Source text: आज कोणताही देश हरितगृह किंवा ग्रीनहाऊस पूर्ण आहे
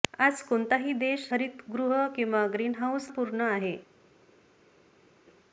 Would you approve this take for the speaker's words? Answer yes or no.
yes